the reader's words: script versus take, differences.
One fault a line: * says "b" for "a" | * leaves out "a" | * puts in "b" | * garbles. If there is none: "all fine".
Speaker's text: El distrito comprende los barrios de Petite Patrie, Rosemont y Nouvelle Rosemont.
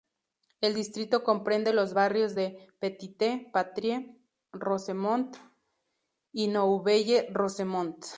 all fine